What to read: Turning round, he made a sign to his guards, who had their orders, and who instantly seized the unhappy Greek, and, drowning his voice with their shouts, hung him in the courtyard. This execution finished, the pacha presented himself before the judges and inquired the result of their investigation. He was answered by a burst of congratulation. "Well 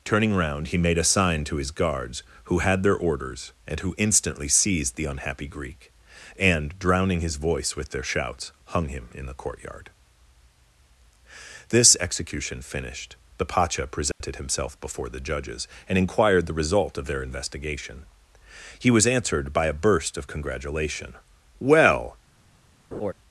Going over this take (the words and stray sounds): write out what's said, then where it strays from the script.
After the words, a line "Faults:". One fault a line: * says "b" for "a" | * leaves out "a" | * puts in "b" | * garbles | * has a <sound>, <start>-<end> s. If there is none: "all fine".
Turning round, he made a sign to his guards, who had their orders, and who instantly seized the unhappy Greek, and, drowning his voice with their shouts, hung him in the courtyard. This execution finished, the pacha presented himself before the judges and inquired the result of their investigation. He was answered by a burst of congratulation. "Well
Faults:
* has a dropout, 14.1-14.2 s
* has a laugh, 22.9-23.1 s